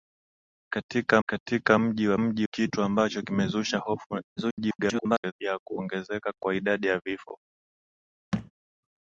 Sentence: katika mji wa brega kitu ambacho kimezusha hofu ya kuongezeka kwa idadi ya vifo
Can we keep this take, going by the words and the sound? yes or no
no